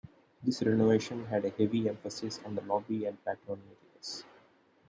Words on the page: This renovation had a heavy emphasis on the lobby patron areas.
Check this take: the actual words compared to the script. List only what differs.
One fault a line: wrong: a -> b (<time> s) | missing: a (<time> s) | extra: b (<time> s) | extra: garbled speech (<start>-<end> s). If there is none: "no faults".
extra: and (3.0 s)